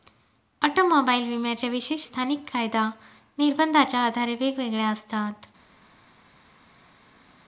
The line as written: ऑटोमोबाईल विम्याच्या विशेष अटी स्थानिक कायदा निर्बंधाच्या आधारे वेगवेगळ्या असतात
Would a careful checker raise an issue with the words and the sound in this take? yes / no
yes